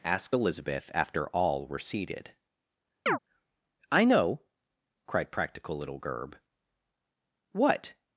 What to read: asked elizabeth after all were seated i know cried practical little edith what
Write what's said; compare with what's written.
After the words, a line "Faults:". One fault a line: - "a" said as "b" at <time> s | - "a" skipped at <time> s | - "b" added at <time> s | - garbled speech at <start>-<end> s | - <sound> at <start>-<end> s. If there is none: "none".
asked elizabeth after all were seated i know cried practical little gerb what
Faults:
- chirp at 3.1-3.2 s
- "edith" said as "gerb" at 6.0 s